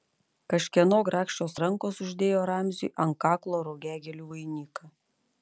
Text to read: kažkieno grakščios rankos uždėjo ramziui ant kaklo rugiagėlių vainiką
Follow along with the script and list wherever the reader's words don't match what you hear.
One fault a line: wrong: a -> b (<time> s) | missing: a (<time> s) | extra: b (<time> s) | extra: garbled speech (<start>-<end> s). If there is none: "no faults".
no faults